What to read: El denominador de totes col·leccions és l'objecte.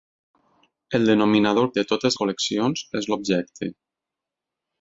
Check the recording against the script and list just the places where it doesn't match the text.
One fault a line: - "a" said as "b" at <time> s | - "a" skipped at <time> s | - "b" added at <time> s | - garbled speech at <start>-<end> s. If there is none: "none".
none